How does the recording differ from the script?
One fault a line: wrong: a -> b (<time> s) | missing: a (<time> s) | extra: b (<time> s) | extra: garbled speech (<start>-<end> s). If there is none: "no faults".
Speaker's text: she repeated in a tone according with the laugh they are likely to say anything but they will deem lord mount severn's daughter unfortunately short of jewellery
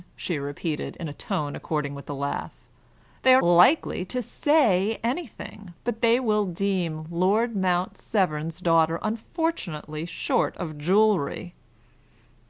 no faults